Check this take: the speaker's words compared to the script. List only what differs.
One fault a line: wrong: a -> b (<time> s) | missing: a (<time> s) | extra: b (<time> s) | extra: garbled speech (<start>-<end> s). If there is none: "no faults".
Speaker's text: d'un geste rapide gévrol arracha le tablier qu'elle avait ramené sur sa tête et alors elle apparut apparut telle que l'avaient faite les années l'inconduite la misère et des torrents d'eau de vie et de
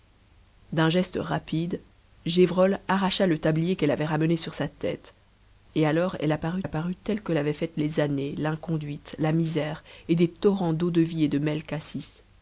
no faults